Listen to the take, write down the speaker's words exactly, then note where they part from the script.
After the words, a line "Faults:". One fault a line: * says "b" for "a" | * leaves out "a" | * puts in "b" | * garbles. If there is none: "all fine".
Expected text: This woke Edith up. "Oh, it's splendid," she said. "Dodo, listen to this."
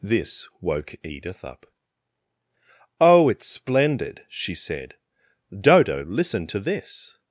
This woke Edith up. "Oh, it's splendid," she said. "Dodo, listen to this."
Faults:
all fine